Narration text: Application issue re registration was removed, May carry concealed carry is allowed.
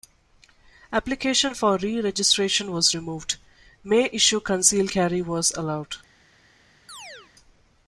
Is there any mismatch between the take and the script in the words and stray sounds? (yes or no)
yes